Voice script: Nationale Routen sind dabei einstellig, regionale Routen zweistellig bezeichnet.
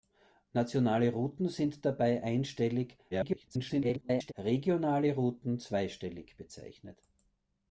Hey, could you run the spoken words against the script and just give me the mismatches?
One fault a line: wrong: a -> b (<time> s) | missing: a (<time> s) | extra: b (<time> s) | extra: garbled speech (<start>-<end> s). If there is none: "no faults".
extra: garbled speech (3.1-4.3 s)